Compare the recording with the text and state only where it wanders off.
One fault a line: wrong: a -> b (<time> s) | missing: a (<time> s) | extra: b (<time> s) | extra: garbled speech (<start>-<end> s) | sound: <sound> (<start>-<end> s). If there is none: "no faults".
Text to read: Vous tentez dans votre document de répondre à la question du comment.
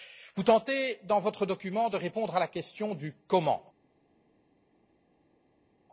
no faults